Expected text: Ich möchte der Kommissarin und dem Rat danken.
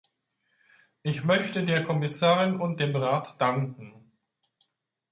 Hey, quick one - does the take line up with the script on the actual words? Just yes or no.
yes